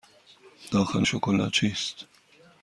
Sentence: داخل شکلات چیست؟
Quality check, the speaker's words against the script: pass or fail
pass